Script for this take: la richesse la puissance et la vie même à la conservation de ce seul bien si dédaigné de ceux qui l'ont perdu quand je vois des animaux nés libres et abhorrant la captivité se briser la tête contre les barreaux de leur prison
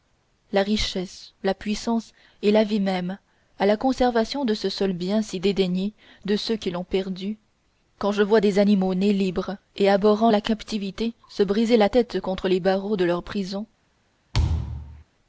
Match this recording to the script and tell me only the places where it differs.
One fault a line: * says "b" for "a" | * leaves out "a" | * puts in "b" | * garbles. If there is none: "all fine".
all fine